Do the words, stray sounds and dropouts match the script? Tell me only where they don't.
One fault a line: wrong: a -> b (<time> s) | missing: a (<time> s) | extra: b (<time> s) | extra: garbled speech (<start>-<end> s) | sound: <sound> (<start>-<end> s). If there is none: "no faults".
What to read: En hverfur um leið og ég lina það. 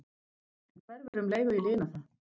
sound: dropout (1.1-1.1 s)